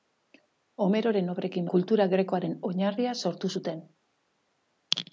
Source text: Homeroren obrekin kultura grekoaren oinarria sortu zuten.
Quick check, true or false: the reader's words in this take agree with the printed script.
true